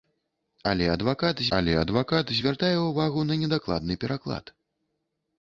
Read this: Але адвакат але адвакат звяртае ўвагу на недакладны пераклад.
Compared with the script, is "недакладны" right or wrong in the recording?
right